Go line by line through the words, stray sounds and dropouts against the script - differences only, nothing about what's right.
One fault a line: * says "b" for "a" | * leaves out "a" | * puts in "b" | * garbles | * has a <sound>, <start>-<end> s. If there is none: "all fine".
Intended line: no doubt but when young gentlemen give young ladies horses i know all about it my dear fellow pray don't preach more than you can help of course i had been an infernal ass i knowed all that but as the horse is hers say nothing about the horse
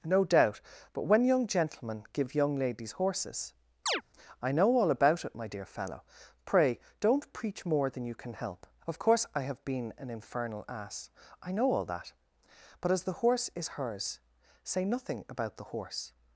* has a chirp, 3.9-4.0 s
* says "have" for "had"
* says "know" for "knowed"